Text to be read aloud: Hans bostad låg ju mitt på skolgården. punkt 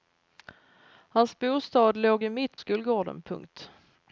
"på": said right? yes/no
no